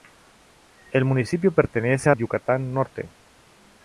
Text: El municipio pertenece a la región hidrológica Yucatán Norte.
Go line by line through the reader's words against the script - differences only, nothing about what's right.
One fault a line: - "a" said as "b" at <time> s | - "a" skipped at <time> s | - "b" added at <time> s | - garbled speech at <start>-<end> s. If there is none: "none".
- "la región hidrológica" skipped at 2.1 s